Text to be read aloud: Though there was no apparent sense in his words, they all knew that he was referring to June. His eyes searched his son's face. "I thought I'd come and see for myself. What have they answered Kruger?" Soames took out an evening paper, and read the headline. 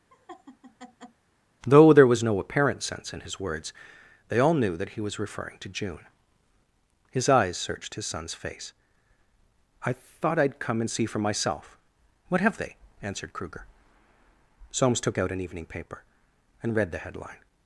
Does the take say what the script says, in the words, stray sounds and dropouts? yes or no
no